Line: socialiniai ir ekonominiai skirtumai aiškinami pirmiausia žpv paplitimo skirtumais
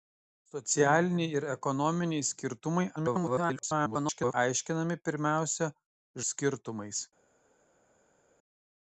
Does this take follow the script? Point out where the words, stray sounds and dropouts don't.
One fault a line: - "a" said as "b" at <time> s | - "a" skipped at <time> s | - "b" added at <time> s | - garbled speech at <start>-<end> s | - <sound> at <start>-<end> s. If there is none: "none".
- garbled speech at 3.0-4.3 s
- "žpv paplitimo" skipped at 5.7 s